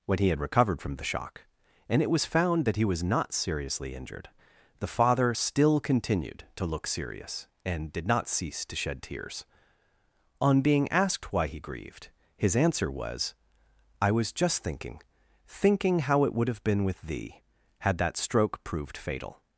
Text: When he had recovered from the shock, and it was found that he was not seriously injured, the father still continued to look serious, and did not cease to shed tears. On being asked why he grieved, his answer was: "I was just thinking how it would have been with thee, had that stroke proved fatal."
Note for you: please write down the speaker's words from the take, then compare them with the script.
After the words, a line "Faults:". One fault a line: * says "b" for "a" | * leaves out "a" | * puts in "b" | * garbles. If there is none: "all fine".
When he had recovered from the shock, and it was found that he was not seriously injured, the father still continued to look serious, and did not cease to shed tears. On being asked why he grieved, his answer was: "I was just thinking thinking how it would have been with thee, had that stroke proved fatal."
Faults:
* puts in "thinking"